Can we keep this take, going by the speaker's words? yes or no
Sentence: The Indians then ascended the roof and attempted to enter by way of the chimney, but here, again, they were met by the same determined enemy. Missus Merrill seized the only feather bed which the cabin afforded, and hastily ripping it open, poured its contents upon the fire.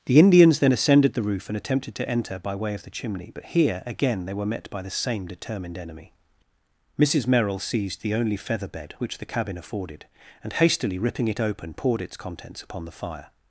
yes